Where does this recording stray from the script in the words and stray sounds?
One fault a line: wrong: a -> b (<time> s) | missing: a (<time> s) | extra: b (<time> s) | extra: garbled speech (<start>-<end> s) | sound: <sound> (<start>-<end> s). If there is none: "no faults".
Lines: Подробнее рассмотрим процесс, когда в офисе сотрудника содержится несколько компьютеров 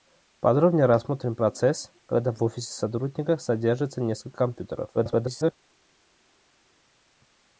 extra: garbled speech (4.9-5.5 s)